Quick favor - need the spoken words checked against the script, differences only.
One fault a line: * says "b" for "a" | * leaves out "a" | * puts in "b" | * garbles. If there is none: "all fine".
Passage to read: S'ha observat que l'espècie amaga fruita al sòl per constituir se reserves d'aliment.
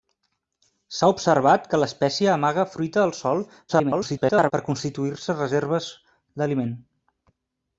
* garbles